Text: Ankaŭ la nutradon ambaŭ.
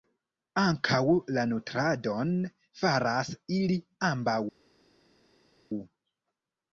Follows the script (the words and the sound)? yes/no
no